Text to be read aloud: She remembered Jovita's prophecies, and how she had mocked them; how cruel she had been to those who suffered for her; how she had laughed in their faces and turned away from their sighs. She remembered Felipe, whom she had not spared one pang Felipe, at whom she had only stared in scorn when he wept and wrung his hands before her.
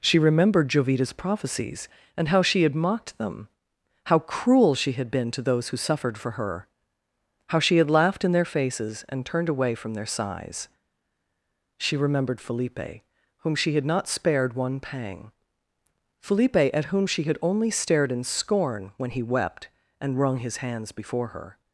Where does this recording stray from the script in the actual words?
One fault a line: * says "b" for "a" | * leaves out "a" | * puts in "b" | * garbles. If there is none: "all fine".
all fine